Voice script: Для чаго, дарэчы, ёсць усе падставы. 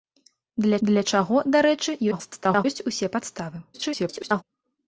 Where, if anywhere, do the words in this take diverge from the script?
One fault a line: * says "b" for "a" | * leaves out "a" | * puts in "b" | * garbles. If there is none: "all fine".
* puts in "для"
* garbles
* garbles